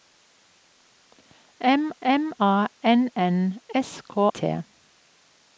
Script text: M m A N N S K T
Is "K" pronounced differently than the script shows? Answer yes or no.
no